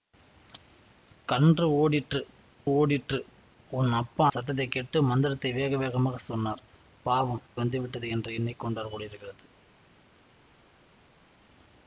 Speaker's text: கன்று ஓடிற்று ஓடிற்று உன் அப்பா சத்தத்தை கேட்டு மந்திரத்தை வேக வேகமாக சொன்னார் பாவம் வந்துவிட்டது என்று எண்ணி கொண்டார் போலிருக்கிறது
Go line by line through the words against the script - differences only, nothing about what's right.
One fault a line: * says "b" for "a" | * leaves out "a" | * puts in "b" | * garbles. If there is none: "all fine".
all fine